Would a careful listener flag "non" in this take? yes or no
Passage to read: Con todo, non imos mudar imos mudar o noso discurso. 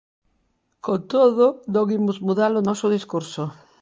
no